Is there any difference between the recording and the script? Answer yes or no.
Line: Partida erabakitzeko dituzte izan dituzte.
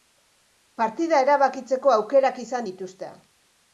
yes